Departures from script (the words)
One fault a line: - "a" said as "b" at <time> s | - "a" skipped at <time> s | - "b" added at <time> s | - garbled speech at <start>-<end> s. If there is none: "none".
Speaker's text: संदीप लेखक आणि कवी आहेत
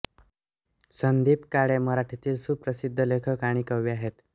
- "काळे मराठीतील सुप्रसिद्ध" added at 1.5 s